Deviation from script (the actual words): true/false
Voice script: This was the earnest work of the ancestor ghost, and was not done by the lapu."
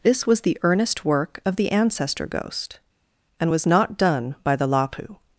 false